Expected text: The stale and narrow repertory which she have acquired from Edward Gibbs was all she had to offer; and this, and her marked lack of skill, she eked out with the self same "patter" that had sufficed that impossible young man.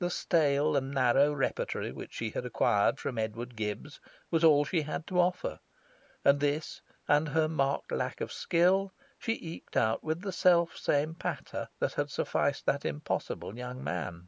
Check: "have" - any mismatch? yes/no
yes